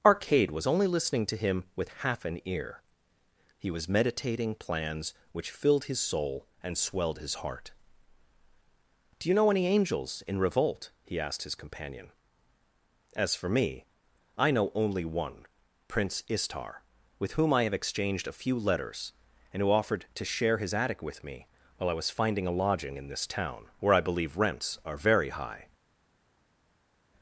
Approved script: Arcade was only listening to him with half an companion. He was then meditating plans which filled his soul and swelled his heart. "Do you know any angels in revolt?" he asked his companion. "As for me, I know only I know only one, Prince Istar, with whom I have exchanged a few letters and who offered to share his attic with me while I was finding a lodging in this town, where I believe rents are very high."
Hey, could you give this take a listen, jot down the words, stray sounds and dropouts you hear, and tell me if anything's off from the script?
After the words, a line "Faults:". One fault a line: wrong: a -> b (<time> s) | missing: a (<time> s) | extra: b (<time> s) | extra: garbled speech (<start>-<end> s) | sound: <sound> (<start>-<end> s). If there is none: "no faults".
Arcade was only listening to him with half an ear. He was meditating plans which filled his soul and swelled his heart. "Do you know any angels in revolt?" he asked his companion. "As for me, I know only one, Prince Istar, with whom I have exchanged a few letters and who offered to share his attic with me while I was finding a lodging in this town, where I believe rents are very high."
Faults:
wrong: companion -> ear (2.4 s)
missing: then (3.9 s)
missing: I know only (15.0 s)